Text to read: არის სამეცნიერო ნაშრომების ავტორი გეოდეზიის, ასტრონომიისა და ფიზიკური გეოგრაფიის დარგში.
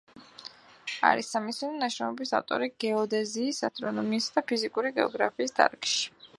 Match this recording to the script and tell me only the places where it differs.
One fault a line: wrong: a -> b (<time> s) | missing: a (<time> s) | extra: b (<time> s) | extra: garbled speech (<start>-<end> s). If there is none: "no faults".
no faults